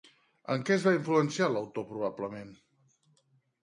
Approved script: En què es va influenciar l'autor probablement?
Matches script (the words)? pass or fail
pass